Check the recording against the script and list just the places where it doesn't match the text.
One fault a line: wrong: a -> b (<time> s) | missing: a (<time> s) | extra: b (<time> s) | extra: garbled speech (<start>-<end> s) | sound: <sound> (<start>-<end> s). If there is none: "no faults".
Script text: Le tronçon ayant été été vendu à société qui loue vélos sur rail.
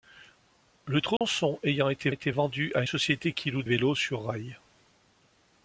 sound: dropout (1.2-1.2 s)